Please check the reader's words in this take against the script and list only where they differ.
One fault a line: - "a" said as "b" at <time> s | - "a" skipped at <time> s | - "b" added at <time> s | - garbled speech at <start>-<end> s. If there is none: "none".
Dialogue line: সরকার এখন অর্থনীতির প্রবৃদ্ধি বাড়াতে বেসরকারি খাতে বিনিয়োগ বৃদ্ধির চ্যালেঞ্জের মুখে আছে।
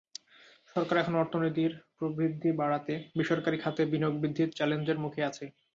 none